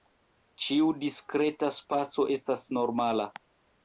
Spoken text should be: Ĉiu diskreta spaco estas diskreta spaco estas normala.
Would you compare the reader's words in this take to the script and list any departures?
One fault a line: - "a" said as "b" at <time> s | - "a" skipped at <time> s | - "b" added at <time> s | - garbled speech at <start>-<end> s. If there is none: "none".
- "diskreta spaco estas" skipped at 2.6 s